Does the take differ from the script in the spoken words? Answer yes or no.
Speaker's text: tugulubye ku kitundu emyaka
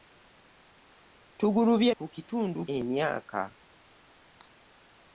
no